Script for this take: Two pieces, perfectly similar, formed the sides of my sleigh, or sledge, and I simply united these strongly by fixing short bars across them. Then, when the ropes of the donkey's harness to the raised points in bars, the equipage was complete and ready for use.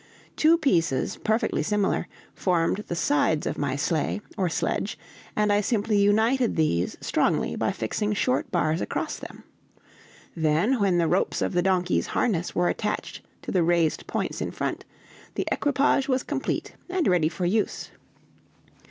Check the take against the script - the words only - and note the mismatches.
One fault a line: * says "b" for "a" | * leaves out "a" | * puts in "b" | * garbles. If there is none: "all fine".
* puts in "were attached"
* says "front" for "bars"